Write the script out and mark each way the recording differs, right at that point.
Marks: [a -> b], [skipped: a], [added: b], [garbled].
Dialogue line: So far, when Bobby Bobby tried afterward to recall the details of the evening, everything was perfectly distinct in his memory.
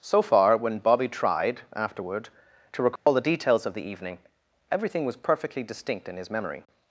So far, when Bobby [skipped: Bobby] tried afterward to recall the details of the evening, everything was perfectly distinct in his memory.